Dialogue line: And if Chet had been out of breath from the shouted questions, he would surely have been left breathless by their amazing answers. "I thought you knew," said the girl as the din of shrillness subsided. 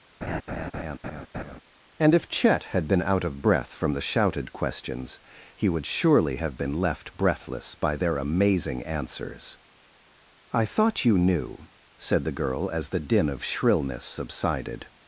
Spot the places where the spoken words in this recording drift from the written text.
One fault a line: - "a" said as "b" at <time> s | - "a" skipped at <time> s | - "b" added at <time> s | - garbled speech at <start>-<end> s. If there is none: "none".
none